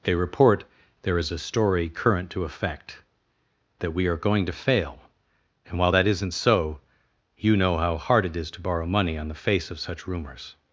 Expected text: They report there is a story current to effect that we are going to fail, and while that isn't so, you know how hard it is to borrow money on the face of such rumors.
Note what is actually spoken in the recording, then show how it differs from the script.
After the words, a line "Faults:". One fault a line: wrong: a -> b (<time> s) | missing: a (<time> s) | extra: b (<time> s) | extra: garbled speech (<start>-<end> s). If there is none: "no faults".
They report there is a story current to effect that we are going to fail, and while that isn't so, you know how hard it is to borrow money on the face of such rumors.
Faults:
no faults